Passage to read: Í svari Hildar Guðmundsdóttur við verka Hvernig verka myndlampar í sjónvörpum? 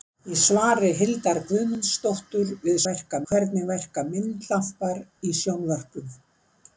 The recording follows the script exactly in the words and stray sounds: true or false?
true